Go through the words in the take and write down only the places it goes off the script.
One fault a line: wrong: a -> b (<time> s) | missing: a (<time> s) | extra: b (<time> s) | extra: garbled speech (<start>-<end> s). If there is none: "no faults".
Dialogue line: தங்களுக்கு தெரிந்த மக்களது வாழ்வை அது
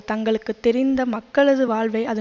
no faults